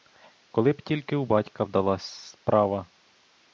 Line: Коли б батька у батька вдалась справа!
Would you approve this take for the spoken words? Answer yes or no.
no